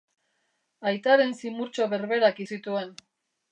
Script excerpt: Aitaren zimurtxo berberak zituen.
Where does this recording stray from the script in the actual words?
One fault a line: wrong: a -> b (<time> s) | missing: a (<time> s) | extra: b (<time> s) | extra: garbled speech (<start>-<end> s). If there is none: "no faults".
no faults